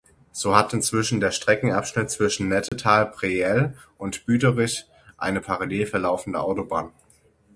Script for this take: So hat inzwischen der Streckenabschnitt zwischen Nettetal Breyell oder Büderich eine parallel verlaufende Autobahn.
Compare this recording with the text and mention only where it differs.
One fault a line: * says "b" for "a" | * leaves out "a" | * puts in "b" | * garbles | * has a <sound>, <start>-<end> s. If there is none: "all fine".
* has a dropout, 2.7-2.7 s
* says "und" for "oder"